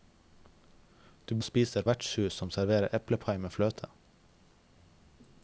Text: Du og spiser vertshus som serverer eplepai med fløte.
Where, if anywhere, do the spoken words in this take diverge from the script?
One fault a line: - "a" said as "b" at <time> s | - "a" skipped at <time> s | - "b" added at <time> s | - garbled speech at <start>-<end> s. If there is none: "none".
none